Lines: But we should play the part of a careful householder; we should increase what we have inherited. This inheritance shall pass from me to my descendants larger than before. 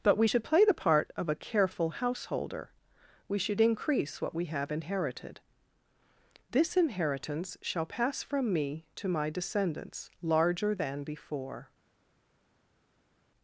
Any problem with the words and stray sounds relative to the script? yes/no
no